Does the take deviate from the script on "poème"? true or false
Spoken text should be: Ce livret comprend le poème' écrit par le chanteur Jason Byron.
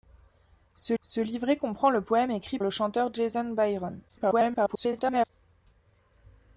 false